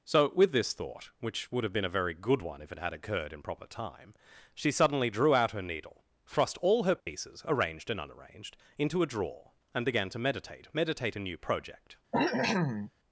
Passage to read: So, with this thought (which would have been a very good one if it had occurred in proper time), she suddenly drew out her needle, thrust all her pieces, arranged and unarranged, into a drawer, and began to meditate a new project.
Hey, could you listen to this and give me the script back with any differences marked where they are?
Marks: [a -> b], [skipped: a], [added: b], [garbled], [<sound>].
So, with this thought (which would have been a very good one if it had occurred in proper time), she suddenly drew out her needle, thrust all her pieces, [dropout] arranged and unarranged, into a drawer, and began to meditate [added: meditate] a new project. [cough]